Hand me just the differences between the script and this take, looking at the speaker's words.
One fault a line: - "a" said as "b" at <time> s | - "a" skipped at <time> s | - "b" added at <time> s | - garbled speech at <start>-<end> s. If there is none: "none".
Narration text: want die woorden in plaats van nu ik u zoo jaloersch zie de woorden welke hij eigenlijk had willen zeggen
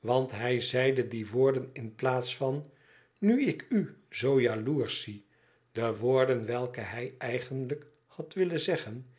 - "hij zeide" added at 0.3 s